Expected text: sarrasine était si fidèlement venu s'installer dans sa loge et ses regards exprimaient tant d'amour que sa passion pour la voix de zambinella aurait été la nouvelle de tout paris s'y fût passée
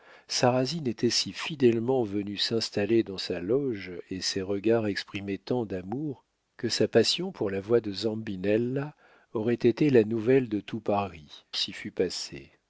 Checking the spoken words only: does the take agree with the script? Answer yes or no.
yes